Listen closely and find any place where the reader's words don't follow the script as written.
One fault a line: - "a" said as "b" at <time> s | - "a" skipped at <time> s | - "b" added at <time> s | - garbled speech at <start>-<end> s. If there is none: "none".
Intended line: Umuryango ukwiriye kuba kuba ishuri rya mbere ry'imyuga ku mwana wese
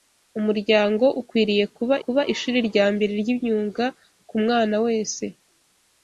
none